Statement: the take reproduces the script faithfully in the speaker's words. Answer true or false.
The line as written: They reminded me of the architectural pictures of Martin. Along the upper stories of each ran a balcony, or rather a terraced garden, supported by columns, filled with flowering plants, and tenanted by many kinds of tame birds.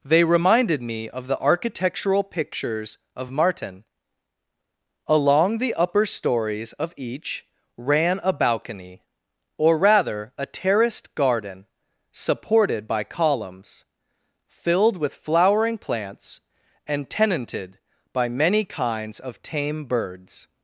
true